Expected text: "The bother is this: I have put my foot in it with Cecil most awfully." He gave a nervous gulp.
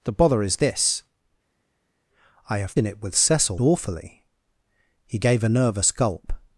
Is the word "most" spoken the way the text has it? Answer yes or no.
no